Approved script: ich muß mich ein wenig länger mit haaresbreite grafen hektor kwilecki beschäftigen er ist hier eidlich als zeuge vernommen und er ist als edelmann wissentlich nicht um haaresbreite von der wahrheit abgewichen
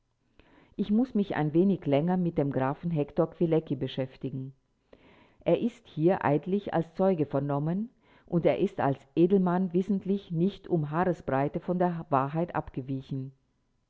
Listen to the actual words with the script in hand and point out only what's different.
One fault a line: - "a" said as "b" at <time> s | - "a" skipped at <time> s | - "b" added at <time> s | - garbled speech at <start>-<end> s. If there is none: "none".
- "haaresbreite" said as "dem" at 2.4 s